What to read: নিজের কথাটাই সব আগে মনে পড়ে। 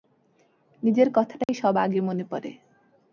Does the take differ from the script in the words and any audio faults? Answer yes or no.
yes